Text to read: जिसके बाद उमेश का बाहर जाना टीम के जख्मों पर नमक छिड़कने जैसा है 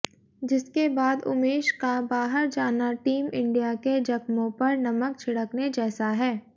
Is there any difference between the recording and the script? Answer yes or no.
yes